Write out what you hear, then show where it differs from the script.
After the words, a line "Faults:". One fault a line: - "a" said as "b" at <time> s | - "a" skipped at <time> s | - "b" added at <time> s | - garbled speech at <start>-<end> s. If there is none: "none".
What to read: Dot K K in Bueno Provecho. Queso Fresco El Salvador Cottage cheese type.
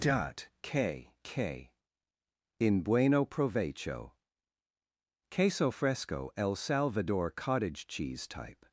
Dot K K in Bueno Provecho. Queso Fresco El Salvador Cottage cheese type.
Faults:
none